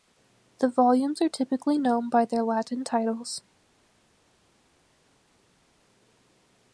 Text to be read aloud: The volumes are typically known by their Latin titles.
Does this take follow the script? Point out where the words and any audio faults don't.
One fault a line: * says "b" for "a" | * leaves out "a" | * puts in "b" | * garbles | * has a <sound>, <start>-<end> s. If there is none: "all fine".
all fine